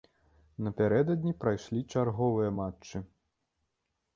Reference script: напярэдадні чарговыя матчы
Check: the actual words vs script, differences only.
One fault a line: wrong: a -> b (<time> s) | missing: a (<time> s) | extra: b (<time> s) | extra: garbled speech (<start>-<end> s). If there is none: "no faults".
extra: прайшлі (1.4 s)